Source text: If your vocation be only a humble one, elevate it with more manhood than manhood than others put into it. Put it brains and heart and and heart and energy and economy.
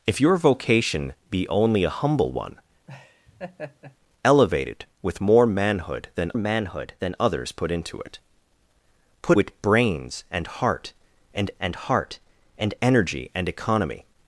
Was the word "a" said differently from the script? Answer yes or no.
no